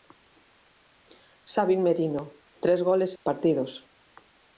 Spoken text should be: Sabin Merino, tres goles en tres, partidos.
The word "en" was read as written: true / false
false